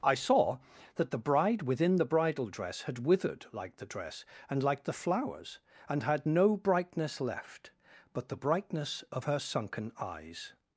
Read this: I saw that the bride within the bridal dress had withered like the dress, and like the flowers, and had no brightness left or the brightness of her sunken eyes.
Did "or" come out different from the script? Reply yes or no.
yes